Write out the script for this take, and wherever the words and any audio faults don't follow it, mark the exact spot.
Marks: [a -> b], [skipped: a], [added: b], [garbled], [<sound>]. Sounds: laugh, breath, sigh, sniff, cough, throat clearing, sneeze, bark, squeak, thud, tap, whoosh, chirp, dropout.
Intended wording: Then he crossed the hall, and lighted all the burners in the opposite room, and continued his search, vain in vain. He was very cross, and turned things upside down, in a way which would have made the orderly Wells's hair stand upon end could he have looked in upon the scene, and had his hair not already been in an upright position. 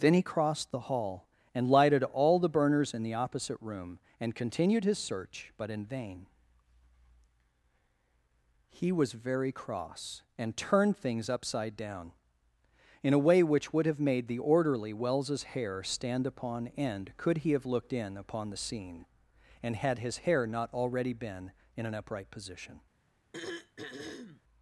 Then he crossed the hall, and lighted all the burners in the opposite room, and continued his search, [vain -> but] in vain. He was very cross, and turned things upside down, in a way which would have made the orderly Wells's hair stand upon end could he have looked in upon the scene, and had his hair not already been in an upright position. [throat clearing]